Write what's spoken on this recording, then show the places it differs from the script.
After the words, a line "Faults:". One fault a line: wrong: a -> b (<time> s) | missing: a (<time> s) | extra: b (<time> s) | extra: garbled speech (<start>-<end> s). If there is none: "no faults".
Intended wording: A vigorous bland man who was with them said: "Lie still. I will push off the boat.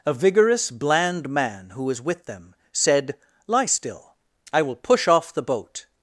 A vigorous bland man who was with them said: "Lie still. I will push off the boat.
Faults:
no faults